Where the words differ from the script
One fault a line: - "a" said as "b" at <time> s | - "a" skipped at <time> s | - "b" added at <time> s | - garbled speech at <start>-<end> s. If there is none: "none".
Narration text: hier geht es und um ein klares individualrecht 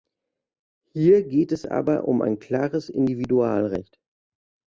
- "und" said as "aber" at 1.6 s